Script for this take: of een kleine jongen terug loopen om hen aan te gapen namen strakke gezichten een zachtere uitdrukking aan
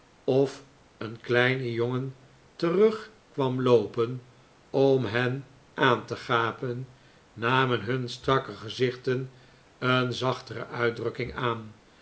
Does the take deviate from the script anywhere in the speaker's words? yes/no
yes